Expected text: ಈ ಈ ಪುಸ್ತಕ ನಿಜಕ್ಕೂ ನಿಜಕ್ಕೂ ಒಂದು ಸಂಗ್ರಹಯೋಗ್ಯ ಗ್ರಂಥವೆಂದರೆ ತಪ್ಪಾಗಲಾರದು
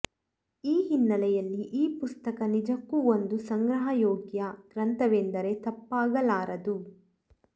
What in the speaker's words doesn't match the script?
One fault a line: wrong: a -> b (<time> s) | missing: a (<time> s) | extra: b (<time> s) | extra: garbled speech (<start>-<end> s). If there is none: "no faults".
extra: ಹಿನ್ನೆಲೆಯಲ್ಲಿ (0.9 s)
missing: ನಿಜಕ್ಕೂ (3.0 s)